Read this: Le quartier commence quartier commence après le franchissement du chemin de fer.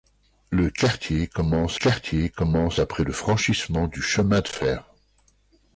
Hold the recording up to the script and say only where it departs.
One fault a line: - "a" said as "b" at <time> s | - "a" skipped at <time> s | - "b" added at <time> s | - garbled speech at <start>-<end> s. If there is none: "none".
none